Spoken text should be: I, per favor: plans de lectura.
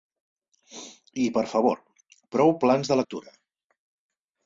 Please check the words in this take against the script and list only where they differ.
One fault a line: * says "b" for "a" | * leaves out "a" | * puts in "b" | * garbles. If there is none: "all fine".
* puts in "prou"